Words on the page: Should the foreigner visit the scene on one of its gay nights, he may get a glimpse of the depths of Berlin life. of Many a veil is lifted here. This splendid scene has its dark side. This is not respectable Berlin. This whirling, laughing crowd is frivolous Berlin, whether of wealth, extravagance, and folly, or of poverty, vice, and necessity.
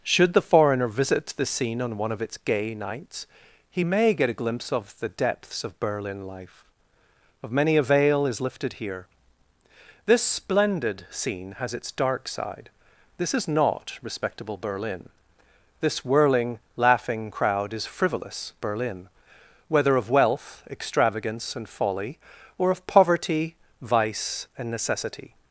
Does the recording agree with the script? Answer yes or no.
yes